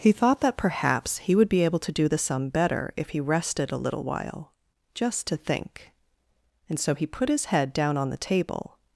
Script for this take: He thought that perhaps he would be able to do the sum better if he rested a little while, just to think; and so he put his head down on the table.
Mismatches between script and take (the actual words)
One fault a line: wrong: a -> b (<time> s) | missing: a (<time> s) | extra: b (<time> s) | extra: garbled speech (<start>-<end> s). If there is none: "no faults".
no faults